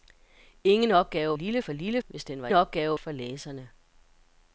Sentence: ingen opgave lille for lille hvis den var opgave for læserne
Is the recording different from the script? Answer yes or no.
no